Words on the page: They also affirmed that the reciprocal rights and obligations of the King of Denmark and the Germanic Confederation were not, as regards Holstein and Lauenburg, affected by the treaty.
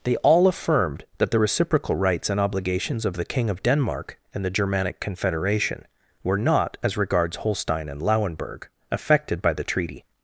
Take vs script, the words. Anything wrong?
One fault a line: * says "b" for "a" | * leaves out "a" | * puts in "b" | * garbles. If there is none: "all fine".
* says "all" for "also"